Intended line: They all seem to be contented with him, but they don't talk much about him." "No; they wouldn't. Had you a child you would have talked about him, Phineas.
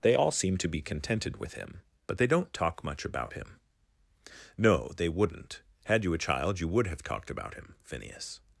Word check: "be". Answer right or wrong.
right